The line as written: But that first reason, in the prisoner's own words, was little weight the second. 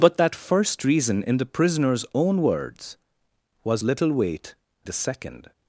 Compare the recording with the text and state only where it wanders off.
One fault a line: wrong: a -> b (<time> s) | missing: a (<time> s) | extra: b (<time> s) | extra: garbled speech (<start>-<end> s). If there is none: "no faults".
no faults